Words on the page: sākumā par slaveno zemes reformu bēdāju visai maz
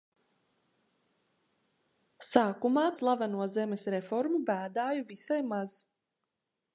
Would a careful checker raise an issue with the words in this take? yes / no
yes